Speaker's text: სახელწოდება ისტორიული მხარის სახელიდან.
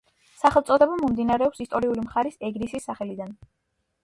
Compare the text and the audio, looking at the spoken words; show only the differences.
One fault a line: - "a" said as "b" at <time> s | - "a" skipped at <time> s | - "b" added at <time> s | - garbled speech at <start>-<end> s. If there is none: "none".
- "მომდინარეობს" added at 1.0 s
- "ეგრისის" added at 2.5 s